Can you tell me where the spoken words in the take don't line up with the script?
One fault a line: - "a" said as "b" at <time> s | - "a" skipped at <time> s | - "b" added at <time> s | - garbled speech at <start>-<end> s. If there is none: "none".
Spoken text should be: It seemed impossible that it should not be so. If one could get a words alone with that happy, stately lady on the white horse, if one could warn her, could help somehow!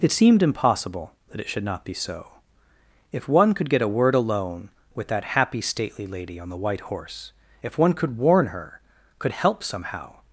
- "words" said as "word" at 4.0 s